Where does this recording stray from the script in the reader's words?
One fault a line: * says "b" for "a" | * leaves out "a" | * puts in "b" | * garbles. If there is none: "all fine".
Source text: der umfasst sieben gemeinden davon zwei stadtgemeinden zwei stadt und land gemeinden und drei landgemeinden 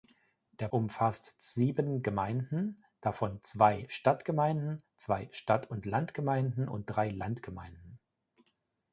all fine